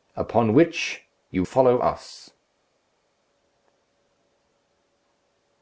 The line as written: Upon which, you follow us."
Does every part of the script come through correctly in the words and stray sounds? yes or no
yes